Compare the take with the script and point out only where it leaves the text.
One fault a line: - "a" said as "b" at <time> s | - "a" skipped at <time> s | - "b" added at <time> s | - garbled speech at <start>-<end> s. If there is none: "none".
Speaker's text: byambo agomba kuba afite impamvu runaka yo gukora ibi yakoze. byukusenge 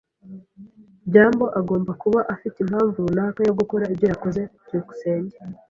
- "ibi" said as "ibyo" at 3.9 s